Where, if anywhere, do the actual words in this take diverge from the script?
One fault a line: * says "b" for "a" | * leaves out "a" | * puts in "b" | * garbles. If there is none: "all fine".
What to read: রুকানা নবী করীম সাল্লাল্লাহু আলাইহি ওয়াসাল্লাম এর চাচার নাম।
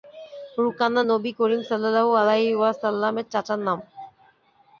all fine